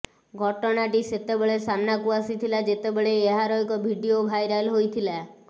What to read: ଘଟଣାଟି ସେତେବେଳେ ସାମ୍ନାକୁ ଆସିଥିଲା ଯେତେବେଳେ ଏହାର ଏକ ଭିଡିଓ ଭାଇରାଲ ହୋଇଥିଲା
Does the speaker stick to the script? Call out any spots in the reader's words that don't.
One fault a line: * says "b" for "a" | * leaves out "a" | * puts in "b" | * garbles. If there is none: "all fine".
all fine